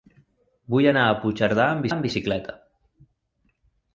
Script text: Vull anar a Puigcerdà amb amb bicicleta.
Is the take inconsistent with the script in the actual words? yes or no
no